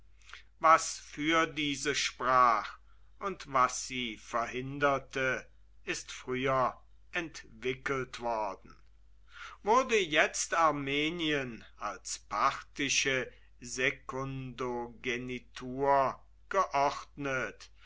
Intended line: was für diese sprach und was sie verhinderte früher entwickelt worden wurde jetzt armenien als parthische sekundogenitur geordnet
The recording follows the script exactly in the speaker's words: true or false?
false